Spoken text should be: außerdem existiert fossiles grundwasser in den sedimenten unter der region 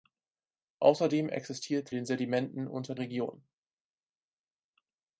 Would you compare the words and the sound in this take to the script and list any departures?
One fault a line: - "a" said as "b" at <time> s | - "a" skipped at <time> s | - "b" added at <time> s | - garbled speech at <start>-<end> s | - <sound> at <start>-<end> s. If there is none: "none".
- "fossiles grundwasser in" skipped at 1.9 s
- "der" skipped at 3.0 s